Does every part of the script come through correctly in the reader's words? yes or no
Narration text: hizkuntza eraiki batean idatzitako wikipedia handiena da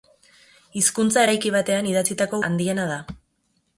no